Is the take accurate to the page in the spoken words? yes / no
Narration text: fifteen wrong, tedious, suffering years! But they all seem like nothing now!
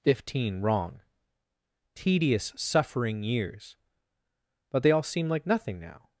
yes